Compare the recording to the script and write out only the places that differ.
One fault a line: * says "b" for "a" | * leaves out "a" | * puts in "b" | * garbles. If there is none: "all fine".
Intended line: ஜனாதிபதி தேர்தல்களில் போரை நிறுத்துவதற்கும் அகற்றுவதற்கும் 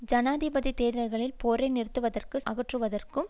all fine